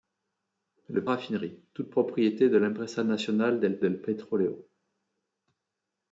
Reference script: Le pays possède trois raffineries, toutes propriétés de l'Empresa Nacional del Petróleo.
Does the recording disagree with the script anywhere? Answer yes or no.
yes